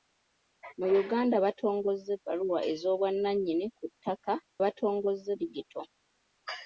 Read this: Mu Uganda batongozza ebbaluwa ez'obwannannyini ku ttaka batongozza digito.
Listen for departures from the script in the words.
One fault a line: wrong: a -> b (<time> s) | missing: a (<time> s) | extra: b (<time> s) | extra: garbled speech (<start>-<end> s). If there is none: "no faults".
no faults